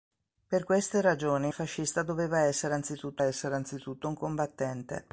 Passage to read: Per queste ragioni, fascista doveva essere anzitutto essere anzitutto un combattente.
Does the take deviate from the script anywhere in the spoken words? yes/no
no